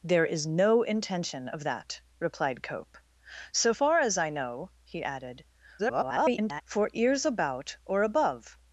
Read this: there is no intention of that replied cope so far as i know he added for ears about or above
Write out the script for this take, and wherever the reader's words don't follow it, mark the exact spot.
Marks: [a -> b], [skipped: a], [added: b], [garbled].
there is no intention of that replied cope so far as i know he added [garbled] for ears about or above